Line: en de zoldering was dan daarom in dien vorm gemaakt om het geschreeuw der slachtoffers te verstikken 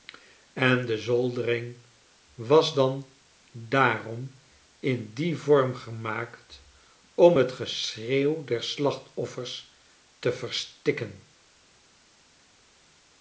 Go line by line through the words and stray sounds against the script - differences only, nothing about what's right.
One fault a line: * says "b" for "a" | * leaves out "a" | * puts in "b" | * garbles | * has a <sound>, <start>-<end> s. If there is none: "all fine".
all fine